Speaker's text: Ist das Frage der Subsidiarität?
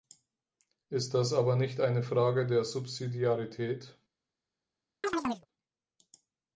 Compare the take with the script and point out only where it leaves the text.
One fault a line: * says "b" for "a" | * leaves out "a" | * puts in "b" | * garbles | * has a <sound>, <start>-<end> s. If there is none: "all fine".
* puts in "aber nicht eine"
* has a chirp, 5.0-5.5 s